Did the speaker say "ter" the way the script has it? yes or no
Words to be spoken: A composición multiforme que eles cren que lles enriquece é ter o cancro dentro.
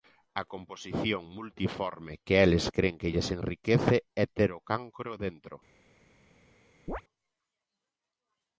yes